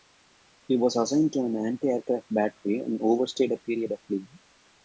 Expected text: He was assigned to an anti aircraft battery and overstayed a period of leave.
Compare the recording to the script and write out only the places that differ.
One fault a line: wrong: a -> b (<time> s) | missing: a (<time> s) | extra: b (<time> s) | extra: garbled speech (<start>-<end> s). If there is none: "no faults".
no faults